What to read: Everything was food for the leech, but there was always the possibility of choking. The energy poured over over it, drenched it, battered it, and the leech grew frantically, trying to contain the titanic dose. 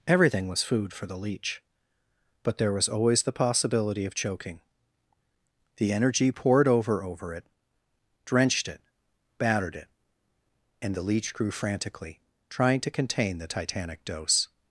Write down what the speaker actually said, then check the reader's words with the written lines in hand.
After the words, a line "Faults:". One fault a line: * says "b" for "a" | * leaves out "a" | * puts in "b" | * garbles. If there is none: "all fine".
Everything was food for the leech, but there was always the possibility of choking. The energy poured over over it, drenched it, battered it, and the leech grew frantically, trying to contain the titanic dose.
Faults:
all fine